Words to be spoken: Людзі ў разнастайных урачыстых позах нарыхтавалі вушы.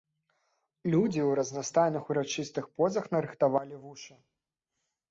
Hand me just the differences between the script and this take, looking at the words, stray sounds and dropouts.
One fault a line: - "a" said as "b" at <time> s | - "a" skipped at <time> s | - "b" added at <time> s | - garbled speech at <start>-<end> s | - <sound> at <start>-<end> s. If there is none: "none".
none